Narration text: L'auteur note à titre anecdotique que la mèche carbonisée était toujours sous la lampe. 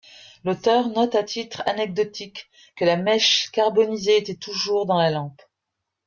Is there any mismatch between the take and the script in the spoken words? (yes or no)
yes